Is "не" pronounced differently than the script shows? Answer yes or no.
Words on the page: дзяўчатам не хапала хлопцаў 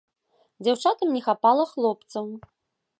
no